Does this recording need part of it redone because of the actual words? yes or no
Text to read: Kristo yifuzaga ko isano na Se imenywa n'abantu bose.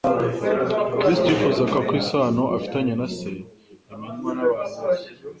yes